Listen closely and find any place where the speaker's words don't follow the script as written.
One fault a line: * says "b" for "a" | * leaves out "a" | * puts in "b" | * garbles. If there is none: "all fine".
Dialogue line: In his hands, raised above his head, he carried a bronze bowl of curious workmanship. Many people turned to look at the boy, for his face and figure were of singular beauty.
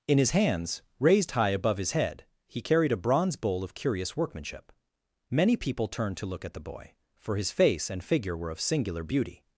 * puts in "high"